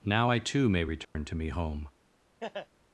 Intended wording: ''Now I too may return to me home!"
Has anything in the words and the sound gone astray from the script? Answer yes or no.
yes